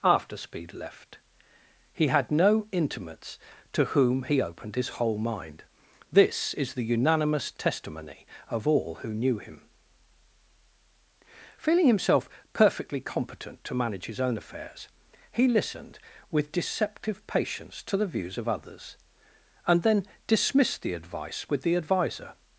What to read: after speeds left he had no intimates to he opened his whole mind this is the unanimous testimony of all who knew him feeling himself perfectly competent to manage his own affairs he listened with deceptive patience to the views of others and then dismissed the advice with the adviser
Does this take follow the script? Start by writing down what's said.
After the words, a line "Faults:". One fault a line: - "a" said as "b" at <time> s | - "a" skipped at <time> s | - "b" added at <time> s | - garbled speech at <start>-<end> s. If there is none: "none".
after speed left he had no intimates to whom he opened his whole mind this is the unanimous testimony of all who knew him feeling himself perfectly competent to manage his own affairs he listened with deceptive patience to the views of others and then dismissed the advice with the adviser
Faults:
- "speeds" said as "speed" at 0.3 s
- "whom" added at 3.9 s